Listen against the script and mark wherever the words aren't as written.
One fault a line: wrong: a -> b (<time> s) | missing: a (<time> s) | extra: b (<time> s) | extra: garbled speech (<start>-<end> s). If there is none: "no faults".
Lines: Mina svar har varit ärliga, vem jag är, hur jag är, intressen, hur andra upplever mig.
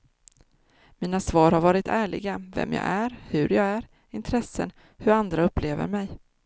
no faults